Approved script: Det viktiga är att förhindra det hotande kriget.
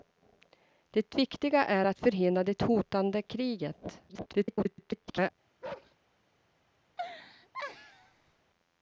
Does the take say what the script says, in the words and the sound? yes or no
no